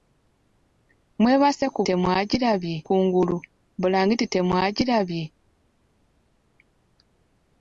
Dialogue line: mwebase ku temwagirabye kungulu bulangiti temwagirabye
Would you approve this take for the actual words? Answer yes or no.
yes